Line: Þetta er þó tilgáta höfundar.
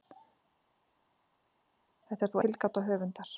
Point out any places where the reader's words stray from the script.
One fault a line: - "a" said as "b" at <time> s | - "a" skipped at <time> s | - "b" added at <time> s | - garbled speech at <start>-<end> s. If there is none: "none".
none